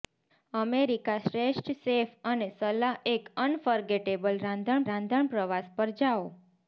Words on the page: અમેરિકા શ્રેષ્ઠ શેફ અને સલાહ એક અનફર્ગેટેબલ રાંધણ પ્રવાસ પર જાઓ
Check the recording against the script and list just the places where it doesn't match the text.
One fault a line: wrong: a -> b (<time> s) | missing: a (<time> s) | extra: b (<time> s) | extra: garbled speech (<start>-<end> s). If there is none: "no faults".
extra: રાંધણ (4.9 s)